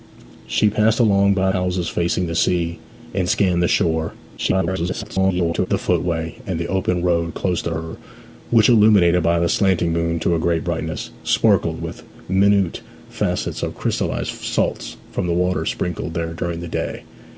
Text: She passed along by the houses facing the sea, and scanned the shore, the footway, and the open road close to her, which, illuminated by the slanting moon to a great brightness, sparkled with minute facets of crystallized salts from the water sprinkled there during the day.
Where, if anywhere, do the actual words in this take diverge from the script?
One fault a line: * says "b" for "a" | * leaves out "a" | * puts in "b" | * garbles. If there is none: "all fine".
* leaves out "the"
* garbles